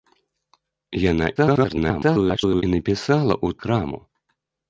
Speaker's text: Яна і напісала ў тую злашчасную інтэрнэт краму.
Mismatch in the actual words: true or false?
true